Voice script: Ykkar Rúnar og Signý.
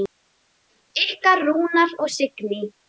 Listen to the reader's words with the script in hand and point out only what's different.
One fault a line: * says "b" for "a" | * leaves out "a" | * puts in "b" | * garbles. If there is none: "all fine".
all fine